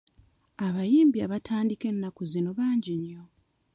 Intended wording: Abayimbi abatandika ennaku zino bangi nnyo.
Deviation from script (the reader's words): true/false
false